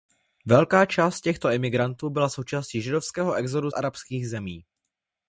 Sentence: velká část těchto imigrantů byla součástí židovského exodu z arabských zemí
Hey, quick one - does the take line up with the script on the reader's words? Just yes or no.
no